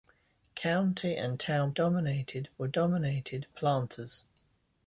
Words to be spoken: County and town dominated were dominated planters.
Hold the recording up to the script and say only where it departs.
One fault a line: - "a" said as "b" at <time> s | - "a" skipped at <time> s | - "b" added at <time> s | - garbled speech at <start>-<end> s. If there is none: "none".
none